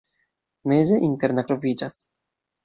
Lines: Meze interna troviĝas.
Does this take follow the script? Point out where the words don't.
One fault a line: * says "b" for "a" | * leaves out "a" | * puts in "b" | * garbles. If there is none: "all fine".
all fine